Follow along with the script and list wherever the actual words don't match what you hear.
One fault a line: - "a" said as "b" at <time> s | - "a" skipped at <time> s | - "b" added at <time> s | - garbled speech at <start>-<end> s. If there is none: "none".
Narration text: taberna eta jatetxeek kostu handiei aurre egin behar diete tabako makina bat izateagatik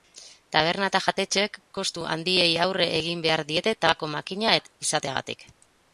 none